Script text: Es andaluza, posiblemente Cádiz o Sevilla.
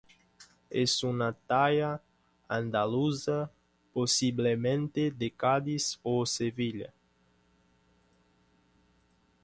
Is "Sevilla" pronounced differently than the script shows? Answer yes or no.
no